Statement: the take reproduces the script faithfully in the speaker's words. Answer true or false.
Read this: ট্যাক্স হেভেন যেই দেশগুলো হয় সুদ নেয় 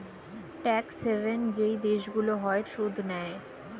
true